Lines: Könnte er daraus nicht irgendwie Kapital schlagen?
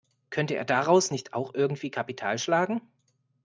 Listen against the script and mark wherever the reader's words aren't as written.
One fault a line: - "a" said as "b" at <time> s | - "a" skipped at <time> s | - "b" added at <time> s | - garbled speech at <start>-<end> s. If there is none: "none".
- "auch" added at 1.3 s